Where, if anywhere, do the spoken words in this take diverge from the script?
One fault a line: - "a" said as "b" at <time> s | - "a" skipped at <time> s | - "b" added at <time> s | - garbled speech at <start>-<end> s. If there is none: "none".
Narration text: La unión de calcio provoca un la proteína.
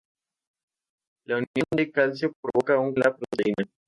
none